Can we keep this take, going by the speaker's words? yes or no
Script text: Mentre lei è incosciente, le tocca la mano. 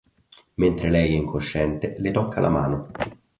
yes